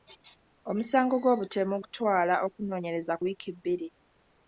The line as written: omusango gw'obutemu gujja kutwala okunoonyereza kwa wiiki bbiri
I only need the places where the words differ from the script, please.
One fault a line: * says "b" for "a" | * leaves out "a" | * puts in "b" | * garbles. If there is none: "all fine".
* leaves out "gujja"
* leaves out "kwa"